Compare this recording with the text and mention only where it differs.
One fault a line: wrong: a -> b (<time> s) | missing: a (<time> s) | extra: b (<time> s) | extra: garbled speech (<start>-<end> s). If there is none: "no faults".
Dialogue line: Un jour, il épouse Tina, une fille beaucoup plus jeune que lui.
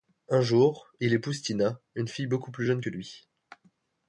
no faults